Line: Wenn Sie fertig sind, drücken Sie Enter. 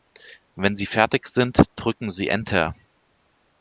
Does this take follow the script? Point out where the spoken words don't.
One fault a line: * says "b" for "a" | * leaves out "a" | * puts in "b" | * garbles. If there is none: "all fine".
all fine